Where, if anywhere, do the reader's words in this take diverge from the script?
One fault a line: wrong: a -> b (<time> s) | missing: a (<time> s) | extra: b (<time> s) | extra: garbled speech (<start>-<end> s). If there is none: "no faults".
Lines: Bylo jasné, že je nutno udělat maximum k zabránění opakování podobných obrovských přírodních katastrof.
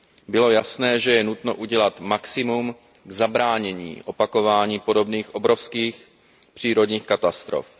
no faults